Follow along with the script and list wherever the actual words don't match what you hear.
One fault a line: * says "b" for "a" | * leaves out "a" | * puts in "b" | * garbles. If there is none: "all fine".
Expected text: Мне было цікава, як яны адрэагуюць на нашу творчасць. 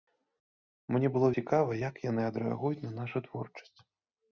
all fine